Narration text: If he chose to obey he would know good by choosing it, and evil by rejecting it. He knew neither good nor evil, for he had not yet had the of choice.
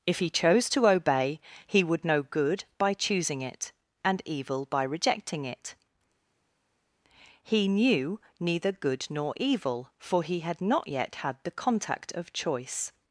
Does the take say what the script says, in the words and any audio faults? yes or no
no